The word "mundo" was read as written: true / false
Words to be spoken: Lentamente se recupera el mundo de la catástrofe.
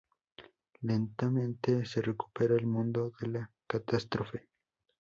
true